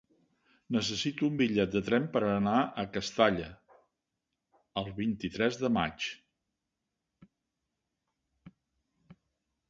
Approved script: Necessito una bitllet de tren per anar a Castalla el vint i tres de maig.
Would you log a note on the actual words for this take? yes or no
yes